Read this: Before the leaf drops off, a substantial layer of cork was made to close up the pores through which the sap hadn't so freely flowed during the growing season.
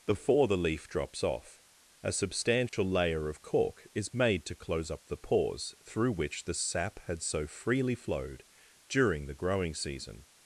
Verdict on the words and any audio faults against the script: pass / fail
fail